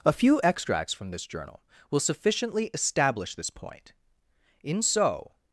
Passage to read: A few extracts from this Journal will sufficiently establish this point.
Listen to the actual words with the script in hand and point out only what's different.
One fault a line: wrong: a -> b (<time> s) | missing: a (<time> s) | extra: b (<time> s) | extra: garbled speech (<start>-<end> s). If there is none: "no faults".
extra: In so (4.6 s)